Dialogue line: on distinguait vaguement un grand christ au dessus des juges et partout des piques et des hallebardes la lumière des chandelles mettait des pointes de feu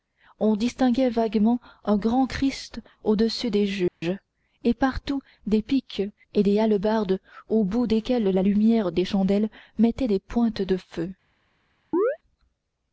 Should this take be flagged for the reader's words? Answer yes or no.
yes